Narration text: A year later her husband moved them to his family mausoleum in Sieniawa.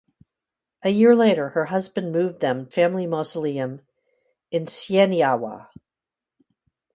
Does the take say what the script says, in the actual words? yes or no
no